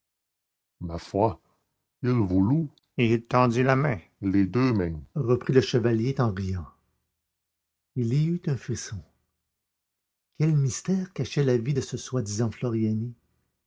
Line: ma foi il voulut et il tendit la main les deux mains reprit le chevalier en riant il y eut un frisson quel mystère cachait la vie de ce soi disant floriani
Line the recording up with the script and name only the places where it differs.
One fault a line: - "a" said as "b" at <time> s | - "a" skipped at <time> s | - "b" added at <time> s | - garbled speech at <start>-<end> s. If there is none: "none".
none